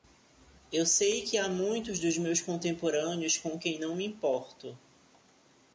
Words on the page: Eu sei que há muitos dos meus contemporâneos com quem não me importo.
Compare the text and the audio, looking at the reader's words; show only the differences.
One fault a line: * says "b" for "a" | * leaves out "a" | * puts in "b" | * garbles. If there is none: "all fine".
all fine